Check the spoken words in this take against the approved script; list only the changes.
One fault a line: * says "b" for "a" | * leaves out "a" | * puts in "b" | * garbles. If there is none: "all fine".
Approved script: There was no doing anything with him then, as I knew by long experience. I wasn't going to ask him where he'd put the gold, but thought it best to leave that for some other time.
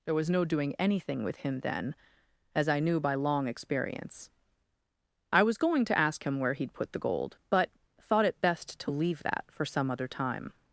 * says "was" for "wasn't"